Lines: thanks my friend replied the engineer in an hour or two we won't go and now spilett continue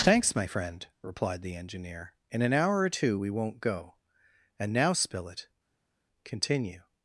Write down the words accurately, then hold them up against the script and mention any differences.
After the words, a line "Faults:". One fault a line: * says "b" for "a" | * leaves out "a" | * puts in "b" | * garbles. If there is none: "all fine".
thanks my friend replied the engineer in an hour or two we won't go and now spilett continue
Faults:
all fine